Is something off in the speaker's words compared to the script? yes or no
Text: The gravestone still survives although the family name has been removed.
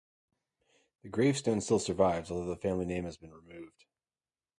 no